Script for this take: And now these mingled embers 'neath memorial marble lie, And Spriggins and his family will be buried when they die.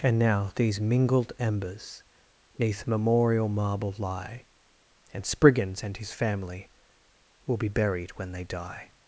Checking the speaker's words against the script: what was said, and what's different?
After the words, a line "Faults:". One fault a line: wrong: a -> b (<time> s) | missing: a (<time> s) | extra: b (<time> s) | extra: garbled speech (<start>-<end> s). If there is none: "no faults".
And now these mingled embers 'neath memorial marble lie, And Spriggins and his family will be buried when they die.
Faults:
no faults